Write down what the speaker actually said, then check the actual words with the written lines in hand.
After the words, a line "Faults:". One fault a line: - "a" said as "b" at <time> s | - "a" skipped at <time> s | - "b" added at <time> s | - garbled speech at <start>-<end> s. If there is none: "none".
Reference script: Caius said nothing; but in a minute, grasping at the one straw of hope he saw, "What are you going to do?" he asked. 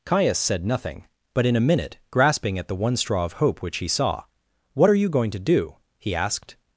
Caius said nothing; but in a minute, grasping at the one straw of hope which he saw, "What are you going to do?" he asked.
Faults:
- "which" added at 3.6 s